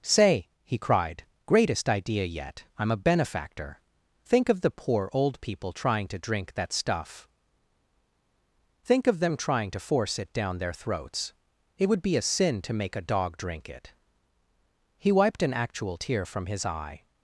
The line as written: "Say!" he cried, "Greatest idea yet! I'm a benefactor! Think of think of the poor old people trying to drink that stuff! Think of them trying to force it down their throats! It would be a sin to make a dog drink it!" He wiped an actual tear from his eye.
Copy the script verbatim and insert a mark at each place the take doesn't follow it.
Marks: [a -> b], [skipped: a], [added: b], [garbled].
"Say!" he cried, "Greatest idea yet! I'm a benefactor! Think of [skipped: think of] the poor old people trying to drink that stuff! Think of them trying to force it down their throats! It would be a sin to make a dog drink it!" He wiped an actual tear from his eye.